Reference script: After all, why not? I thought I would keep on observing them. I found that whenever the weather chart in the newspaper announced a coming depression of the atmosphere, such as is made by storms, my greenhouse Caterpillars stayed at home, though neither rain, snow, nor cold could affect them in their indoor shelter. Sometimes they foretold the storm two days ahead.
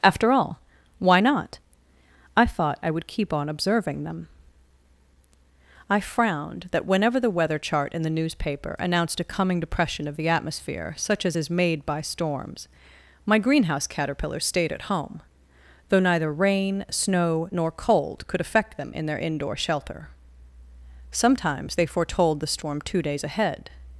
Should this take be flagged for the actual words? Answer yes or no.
yes